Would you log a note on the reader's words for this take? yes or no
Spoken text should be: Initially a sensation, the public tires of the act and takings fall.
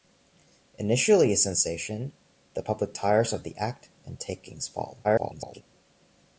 yes